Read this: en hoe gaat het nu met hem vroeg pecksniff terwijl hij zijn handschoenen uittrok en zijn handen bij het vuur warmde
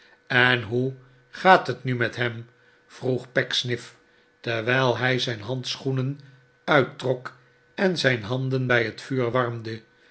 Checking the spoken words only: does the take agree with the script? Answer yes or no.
yes